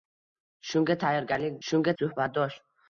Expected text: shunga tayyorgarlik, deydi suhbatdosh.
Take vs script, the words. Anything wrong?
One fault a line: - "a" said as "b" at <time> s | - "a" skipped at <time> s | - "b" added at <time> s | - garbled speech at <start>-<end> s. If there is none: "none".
- "deydi" said as "shunga" at 1.7 s